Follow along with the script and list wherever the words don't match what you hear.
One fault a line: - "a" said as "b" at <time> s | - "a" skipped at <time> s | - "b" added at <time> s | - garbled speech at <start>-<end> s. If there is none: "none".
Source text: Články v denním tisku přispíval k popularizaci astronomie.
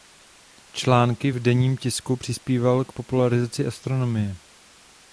none